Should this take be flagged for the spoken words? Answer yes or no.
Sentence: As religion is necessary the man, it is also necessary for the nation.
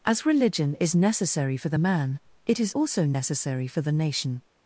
yes